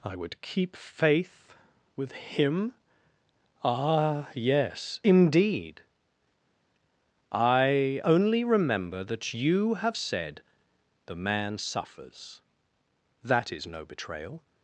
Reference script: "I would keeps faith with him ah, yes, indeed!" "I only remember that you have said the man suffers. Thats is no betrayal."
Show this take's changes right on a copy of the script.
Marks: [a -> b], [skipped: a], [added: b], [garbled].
"I would [keeps -> keep] faith with him ah, yes, indeed!" "I only remember that you have said the man suffers. [Thats -> That] is no betrayal."